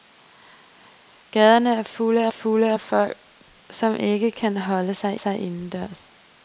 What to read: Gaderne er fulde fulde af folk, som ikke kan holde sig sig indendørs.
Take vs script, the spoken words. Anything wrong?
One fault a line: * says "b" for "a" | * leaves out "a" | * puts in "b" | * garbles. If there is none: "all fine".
all fine